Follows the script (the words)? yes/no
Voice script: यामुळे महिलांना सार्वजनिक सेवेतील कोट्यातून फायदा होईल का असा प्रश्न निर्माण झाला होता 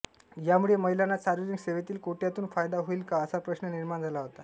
yes